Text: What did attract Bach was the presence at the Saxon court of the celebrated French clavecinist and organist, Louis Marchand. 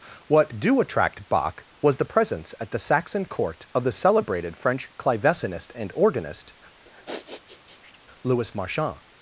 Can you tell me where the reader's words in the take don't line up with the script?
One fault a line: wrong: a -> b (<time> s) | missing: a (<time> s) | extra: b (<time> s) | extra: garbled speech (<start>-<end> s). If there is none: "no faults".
wrong: did -> do (0.6 s)